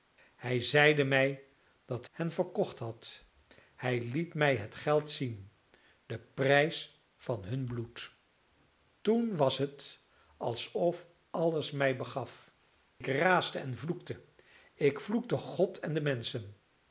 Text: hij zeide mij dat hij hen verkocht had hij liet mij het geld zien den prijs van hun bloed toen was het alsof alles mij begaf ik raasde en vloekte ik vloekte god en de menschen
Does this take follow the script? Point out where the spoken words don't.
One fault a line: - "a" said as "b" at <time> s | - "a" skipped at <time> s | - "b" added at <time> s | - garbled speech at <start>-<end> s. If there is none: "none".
- "hij" skipped at 2.1 s